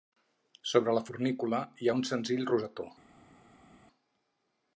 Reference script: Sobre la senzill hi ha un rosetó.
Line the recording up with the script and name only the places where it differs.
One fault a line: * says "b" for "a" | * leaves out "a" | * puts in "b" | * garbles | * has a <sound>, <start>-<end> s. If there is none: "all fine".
* says "fornícula" for "senzill"
* puts in "senzill"